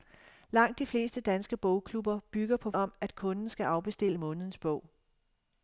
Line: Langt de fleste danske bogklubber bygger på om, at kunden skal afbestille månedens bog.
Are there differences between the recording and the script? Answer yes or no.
no